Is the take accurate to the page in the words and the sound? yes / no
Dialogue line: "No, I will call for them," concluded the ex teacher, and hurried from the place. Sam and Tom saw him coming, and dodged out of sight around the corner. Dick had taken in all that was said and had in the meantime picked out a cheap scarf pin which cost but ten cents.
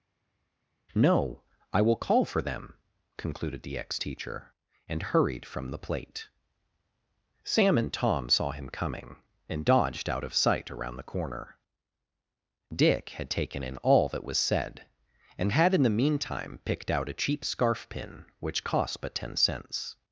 no